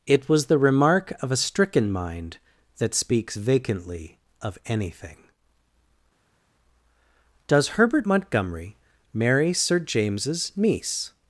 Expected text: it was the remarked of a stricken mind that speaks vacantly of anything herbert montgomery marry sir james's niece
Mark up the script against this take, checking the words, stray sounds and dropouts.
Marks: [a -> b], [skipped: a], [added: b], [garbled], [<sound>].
it was the [remarked -> remark] of a stricken mind that speaks vacantly of anything [added: does] herbert montgomery marry sir james's niece